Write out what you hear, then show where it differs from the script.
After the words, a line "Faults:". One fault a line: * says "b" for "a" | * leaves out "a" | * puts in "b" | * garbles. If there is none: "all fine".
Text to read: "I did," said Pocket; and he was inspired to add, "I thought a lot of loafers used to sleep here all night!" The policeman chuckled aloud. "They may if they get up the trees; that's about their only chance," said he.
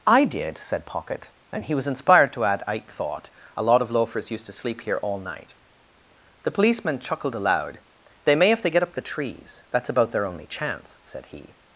"I did," said Pocket; and he was inspired to add, "I thought a lot of loafers used to sleep here all night!" The policeman chuckled aloud. "They may if they get up the trees; that's about their only chance," said he.
Faults:
all fine